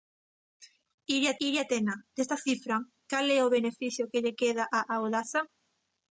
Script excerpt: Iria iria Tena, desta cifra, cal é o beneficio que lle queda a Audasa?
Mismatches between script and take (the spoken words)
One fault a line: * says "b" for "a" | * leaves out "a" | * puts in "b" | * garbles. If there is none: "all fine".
all fine